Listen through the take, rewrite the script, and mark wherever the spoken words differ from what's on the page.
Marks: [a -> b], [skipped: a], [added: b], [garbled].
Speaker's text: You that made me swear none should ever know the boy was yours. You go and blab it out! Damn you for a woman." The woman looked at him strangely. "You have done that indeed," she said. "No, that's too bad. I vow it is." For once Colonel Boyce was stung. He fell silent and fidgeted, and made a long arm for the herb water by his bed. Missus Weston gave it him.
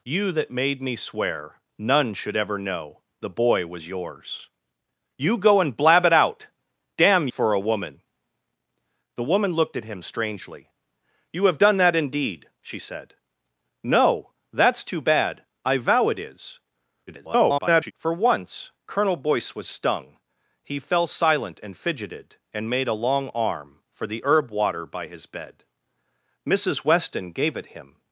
You that made me swear none should ever know the boy was yours. You go and blab it out! Damn [skipped: you] for a woman." The woman looked at him strangely. "You have done that indeed," she said. "No, that's too bad. I vow it is." [garbled] For once Colonel Boyce was stung. He fell silent and fidgeted, and made a long arm for the herb water by his bed. Missus Weston gave it him.